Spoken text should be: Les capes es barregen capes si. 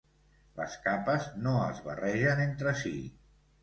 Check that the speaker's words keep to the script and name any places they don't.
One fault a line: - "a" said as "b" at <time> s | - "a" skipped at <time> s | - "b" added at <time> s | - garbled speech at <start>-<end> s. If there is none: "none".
- "no" added at 1.4 s
- "capes" said as "entre" at 2.5 s